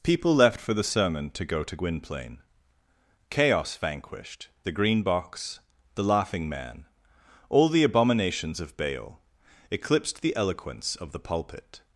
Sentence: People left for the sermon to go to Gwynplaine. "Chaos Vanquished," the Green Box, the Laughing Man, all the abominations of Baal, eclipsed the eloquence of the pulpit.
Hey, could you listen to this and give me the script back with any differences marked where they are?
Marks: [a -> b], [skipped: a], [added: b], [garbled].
People left for the sermon to go to Gwynplaine. "Chaos Vanquished," the Green Box, the Laughing Man, all the abominations of Baal, eclipsed the eloquence of the pulpit.